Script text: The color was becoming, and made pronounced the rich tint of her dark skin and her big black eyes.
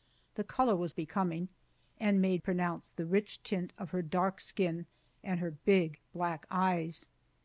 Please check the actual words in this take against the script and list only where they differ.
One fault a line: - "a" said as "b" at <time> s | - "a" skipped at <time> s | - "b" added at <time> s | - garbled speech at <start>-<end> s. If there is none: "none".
none